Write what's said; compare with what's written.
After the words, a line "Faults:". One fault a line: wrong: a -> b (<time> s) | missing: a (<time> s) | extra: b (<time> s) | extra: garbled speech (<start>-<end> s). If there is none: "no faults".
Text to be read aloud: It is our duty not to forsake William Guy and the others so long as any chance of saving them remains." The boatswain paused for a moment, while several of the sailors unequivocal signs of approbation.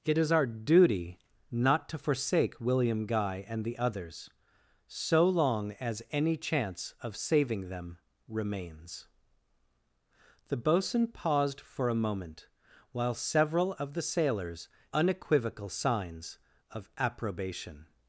It is our duty not to forsake William Guy and the others so long as any chance of saving them remains." The boatswain paused for a moment, while several of the sailors unequivocal signs of approbation.
Faults:
no faults